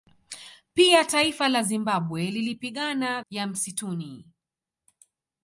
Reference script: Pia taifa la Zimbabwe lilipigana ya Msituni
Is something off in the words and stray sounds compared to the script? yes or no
no